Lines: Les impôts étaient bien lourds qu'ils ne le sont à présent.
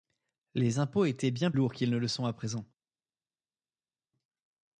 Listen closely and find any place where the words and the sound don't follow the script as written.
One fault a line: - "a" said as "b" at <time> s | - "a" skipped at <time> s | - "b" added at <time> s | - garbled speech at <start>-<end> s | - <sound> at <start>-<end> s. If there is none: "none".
none